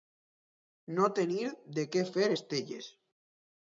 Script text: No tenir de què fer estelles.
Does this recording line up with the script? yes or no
yes